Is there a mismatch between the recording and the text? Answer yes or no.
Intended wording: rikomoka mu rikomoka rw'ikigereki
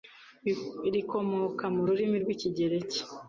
yes